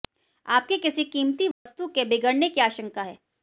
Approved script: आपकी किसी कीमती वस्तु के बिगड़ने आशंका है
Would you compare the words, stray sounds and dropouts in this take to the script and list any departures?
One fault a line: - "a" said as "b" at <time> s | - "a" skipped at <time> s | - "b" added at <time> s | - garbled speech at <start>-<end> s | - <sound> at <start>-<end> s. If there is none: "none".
- dropout at 1.5-1.7 s
- "की" added at 2.5 s